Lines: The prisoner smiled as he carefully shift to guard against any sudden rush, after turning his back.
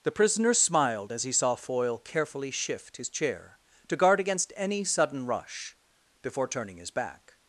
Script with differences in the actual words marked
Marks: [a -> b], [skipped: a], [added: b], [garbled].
The prisoner smiled as he [added: saw Foyle] carefully shift [added: his chair] to guard against any sudden rush, [after -> before] turning his back.